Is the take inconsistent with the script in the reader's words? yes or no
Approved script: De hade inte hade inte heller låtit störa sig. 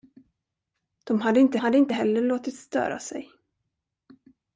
no